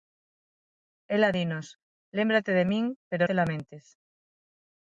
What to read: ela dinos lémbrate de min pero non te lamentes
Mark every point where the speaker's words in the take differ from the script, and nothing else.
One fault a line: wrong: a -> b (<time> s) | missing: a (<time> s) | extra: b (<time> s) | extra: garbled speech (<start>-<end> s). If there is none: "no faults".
missing: non (3.2 s)